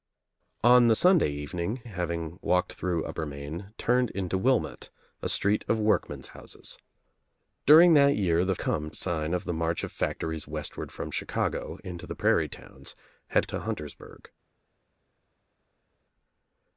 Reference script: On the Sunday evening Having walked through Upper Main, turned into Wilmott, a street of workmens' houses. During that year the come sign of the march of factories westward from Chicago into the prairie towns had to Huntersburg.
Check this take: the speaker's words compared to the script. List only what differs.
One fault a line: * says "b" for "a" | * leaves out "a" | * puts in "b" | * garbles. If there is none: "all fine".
all fine